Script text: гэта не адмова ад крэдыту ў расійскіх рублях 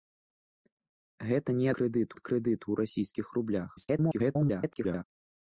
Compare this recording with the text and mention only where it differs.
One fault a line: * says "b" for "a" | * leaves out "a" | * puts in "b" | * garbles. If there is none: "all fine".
* says "крэдыту" for "адмова"
* garbles